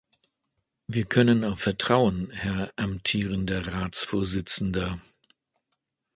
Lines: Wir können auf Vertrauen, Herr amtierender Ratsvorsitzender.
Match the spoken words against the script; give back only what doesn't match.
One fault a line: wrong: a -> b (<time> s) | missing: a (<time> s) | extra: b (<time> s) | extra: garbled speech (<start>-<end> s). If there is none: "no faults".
no faults